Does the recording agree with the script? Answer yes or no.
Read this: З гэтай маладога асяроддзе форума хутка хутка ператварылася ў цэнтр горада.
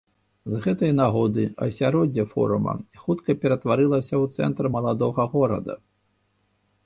no